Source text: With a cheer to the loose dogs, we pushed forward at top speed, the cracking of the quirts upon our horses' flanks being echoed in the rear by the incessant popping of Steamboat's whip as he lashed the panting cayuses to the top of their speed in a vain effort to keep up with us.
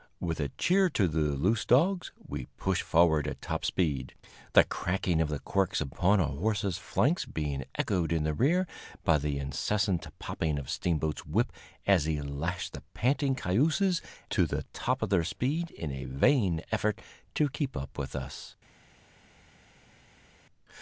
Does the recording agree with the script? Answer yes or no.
yes